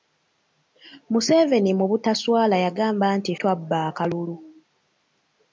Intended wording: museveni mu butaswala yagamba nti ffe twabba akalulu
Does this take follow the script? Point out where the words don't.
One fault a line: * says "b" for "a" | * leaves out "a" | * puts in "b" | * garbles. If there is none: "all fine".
* leaves out "ffe"